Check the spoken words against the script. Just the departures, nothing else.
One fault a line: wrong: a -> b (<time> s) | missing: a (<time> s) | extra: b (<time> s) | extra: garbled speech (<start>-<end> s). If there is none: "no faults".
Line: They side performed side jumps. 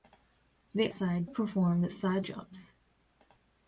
no faults